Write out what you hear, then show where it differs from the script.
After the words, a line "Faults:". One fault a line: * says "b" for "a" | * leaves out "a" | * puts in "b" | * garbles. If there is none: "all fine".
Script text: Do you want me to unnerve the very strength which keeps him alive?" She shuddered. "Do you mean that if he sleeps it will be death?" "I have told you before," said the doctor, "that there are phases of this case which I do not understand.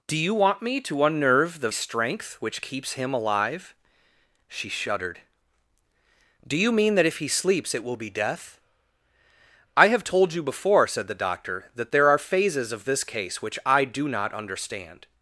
Do you want me to unnerve the strength which keeps him alive?" She shuddered. "Do you mean that if he sleeps it will be death?" "I have told you before," said the doctor, "that there are phases of this case which I do not understand.
Faults:
* leaves out "very"